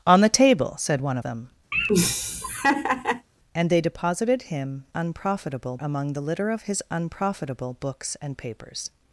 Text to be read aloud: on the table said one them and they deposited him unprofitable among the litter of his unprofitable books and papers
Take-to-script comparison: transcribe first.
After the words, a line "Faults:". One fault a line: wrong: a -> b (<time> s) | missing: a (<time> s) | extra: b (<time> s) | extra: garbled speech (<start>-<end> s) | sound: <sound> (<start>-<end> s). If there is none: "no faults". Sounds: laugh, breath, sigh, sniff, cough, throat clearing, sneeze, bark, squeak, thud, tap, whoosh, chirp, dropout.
on the table said one them and they deposited him unprofitable among the litter of his unprofitable books and papers
Faults:
sound: laugh (1.7-3.3 s)